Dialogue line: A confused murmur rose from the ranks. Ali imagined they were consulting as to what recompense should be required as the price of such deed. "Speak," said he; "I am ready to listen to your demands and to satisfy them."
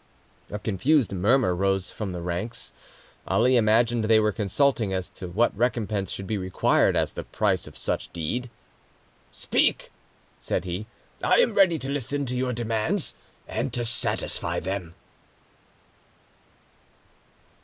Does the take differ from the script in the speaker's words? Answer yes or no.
no